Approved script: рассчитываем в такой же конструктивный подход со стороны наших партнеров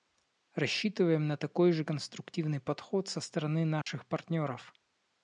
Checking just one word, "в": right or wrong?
wrong